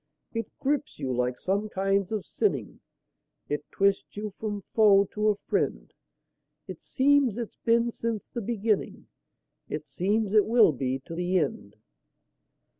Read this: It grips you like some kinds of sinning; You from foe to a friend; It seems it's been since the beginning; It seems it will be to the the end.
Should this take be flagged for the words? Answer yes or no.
yes